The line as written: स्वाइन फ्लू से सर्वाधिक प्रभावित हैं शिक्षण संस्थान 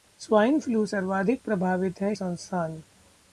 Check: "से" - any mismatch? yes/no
yes